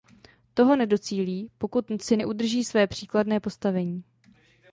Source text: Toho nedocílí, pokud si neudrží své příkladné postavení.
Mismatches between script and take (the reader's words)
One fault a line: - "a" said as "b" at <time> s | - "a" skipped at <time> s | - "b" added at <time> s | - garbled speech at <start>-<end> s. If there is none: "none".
none